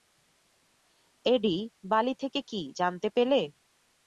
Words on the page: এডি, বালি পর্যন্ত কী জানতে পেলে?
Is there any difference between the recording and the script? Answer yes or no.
yes